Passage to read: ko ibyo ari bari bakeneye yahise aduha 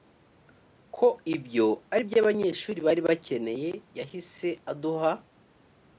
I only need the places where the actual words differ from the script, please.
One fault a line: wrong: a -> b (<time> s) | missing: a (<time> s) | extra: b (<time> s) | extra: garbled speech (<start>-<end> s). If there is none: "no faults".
extra: byo abanyeshuri (2.1 s)